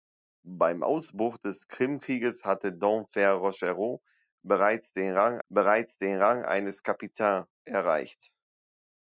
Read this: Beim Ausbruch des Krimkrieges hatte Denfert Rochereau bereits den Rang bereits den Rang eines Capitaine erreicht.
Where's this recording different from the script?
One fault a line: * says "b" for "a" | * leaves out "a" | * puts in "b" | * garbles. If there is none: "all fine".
all fine